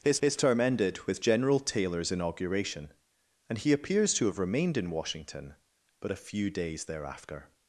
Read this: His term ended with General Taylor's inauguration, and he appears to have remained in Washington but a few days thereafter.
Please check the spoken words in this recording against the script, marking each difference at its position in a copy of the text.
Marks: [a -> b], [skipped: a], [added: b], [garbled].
His [added: his] term ended with General Taylor's inauguration, and he appears to have remained in Washington but a few days thereafter.